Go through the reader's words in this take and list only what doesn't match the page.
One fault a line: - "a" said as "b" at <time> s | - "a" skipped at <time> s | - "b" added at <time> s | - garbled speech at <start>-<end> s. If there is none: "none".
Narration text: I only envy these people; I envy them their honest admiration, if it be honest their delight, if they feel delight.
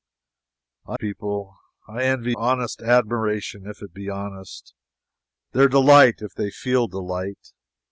- "only envy these" skipped at 1.0 s
- "them their" skipped at 2.4 s